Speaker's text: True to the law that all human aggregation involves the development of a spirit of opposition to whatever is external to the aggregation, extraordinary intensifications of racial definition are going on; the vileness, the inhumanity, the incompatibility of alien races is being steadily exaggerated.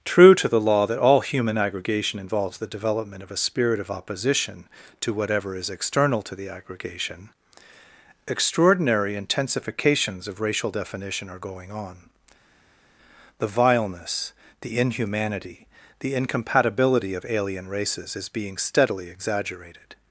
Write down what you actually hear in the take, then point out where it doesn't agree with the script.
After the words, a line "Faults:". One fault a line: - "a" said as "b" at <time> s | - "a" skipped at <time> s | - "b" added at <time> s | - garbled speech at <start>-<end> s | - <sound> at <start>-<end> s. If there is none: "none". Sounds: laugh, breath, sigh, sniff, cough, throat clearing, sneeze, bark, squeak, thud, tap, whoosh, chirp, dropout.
True to the law that all human aggregation involves the development of a spirit of opposition to whatever is external to the aggregation, extraordinary intensifications of racial definition are going on; the vileness, the inhumanity, the incompatibility of alien races is being steadily exaggerated.
Faults:
none